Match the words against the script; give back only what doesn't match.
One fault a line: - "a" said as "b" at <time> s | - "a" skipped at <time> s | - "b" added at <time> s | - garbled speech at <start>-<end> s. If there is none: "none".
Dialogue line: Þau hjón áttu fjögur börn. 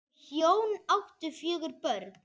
none